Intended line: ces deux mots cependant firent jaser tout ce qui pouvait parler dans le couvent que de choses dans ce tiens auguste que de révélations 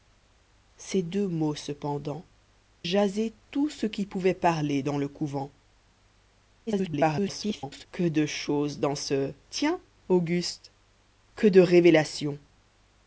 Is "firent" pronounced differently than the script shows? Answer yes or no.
yes